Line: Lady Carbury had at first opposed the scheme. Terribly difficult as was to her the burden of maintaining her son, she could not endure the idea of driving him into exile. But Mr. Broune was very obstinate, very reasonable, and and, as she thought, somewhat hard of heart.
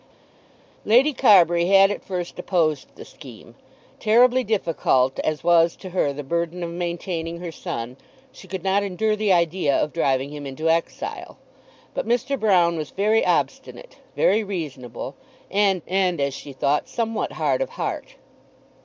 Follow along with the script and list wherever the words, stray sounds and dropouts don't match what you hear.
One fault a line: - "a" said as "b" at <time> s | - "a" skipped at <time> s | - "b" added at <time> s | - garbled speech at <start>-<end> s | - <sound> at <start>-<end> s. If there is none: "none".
none